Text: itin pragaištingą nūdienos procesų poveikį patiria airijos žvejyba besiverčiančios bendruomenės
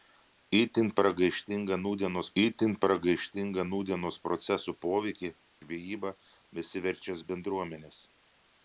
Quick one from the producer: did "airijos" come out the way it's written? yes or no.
no